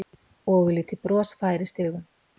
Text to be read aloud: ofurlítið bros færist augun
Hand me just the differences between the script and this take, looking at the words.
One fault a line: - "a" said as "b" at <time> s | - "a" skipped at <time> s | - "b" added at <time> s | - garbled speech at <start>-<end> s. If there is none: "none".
none